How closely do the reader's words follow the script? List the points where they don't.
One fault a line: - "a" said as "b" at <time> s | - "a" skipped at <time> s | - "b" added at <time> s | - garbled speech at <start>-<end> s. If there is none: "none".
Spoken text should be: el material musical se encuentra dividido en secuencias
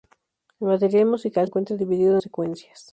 - "se" skipped at 1.5 s
- "en" skipped at 2.2 s